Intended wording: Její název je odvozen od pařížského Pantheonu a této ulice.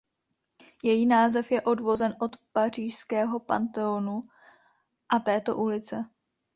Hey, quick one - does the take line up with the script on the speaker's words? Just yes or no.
yes